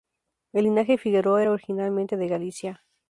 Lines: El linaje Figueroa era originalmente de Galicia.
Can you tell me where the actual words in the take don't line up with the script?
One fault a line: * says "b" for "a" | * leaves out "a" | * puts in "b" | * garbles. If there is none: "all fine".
all fine